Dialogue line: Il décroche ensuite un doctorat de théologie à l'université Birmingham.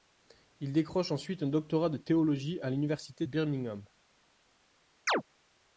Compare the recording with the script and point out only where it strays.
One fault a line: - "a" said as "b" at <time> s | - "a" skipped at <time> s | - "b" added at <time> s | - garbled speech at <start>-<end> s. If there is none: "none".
none